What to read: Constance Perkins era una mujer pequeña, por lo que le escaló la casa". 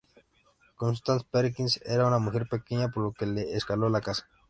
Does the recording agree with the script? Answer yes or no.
yes